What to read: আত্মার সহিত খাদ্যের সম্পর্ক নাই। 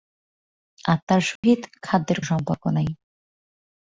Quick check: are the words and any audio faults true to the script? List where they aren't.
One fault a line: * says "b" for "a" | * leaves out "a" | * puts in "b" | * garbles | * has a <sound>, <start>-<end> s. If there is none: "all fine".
* has a dropout, 1.4-1.4 s